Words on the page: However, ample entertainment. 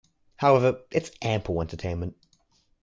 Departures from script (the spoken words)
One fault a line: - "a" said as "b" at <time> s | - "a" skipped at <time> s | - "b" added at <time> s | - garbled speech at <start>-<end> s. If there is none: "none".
- "it's" added at 0.9 s